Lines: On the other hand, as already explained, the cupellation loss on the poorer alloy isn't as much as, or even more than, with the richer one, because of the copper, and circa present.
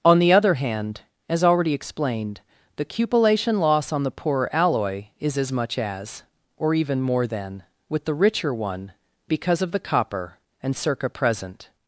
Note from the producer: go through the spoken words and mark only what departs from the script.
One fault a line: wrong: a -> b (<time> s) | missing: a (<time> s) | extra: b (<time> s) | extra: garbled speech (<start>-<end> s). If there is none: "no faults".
wrong: isn't -> is (5.2 s)